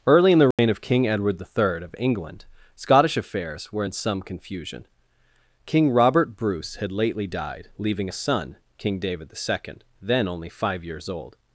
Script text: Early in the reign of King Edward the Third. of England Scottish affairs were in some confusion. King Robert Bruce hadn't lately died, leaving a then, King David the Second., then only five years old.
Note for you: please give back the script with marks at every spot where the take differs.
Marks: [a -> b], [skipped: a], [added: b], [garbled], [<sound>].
Early in the reign [dropout] of King Edward the Third. of England Scottish affairs were in some confusion. King Robert Bruce [hadn't -> had] lately died, leaving a [then, -> son] King David the Second., then only five years old.